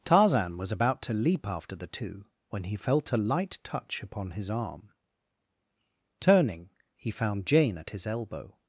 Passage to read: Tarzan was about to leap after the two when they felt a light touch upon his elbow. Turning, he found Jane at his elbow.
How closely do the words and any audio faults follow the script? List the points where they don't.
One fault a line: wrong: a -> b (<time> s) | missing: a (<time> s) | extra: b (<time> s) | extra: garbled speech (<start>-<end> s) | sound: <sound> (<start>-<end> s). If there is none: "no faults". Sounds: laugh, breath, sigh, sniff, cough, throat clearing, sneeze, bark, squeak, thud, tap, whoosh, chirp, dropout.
wrong: they -> he (2.6 s)
wrong: elbow -> arm (4.5 s)